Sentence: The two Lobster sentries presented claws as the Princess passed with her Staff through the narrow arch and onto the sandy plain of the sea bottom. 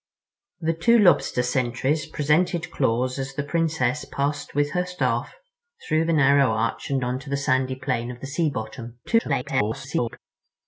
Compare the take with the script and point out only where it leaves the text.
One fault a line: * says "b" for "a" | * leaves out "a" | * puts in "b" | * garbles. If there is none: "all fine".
* garbles